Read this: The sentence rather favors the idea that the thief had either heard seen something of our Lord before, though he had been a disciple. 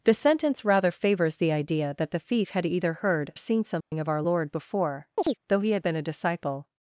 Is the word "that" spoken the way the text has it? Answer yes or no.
yes